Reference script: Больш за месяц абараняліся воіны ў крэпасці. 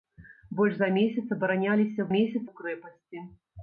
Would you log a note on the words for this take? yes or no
yes